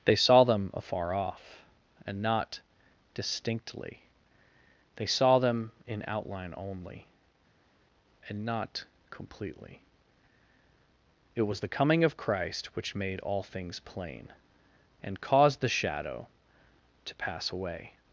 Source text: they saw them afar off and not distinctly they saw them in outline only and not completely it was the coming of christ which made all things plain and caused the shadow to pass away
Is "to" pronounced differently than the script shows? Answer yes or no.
no